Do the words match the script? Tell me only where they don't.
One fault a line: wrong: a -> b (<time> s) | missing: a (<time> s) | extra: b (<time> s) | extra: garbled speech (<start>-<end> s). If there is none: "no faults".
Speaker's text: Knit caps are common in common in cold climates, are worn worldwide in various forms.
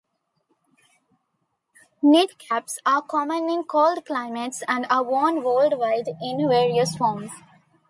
missing: common in (3.6 s)
extra: and (4.7 s)